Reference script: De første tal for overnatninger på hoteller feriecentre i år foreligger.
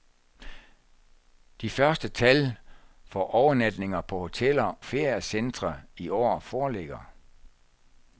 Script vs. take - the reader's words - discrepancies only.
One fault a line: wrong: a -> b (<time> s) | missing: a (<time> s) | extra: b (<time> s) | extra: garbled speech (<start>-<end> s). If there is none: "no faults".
no faults